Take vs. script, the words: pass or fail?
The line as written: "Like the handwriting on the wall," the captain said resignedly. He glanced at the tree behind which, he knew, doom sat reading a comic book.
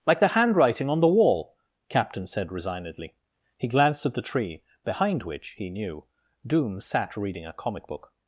fail